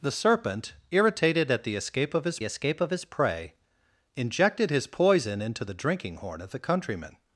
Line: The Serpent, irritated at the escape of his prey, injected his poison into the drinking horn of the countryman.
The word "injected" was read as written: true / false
true